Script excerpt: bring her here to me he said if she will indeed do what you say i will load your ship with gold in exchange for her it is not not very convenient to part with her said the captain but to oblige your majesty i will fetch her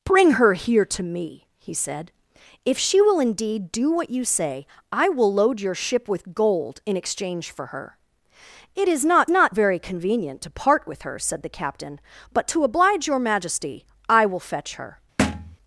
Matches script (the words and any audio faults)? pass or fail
fail